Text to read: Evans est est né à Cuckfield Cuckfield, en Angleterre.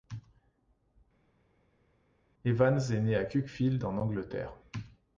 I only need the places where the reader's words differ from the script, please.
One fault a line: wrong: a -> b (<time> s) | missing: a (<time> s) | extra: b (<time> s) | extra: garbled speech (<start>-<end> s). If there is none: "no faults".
missing: est (3.0 s)
missing: Cuckfield (3.8 s)